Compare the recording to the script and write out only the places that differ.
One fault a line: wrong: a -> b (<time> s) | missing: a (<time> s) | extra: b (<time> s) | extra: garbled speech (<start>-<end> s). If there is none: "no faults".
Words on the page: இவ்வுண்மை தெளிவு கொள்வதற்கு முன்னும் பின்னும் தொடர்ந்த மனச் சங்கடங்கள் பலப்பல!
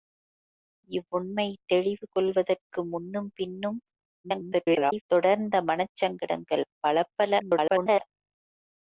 extra: garbled speech (4.2-5.0 s)
extra: garbled speech (7.4-8.0 s)